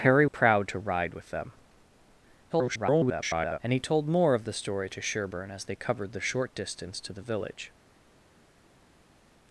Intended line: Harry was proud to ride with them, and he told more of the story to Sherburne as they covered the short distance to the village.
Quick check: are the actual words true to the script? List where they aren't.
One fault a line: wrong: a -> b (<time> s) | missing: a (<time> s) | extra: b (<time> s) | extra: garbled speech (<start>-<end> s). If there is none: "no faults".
missing: was (0.2 s)
extra: garbled speech (2.5-3.6 s)